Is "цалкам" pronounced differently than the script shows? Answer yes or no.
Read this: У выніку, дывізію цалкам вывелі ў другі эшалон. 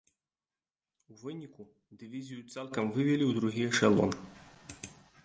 no